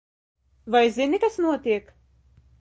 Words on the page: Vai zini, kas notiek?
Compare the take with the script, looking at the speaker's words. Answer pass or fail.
pass